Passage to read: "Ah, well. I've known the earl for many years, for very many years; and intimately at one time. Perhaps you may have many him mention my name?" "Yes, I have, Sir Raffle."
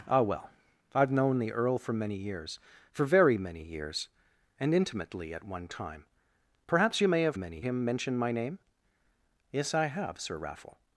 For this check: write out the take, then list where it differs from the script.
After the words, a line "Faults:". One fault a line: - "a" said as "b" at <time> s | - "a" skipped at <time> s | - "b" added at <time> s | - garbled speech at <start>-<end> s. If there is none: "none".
"Ah, well. I've known the earl for many years, for very many years; and intimately at one time. Perhaps you may have many him mention my name?" "Yes, I have, Sir Raffle."
Faults:
none